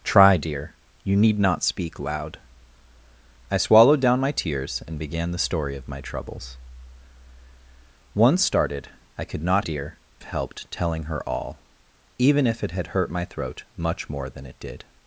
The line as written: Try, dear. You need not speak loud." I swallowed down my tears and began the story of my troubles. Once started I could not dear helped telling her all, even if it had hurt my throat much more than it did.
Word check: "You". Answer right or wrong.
right